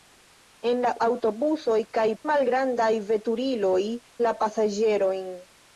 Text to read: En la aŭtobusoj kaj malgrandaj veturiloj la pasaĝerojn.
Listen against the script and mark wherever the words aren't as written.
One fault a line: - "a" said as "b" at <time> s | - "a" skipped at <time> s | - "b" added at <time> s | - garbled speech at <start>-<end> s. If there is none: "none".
none